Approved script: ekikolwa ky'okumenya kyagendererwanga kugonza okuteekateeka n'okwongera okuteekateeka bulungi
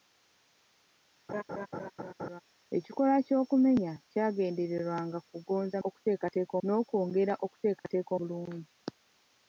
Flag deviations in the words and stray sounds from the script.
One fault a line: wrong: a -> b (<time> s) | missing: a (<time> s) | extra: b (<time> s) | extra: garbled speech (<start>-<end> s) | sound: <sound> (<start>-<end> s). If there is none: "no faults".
sound: laugh (1.3-2.4 s)
sound: dropout (7.8-7.8 s)